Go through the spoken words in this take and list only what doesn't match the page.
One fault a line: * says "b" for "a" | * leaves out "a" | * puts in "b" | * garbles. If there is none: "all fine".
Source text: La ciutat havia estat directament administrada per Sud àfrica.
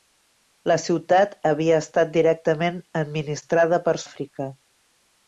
* leaves out "Sud"